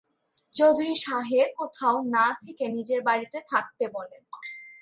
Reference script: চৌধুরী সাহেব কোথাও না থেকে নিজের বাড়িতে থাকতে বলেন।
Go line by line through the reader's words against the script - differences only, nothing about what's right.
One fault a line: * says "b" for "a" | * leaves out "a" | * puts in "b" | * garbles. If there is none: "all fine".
all fine